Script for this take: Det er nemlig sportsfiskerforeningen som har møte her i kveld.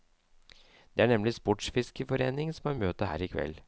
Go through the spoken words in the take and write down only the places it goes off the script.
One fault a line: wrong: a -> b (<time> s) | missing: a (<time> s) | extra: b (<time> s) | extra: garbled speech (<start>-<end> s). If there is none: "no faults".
no faults